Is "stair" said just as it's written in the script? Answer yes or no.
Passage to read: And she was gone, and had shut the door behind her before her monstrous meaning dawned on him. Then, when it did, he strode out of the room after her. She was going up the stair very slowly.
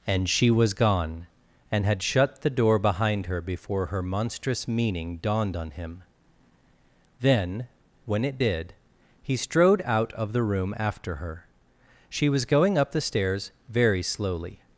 no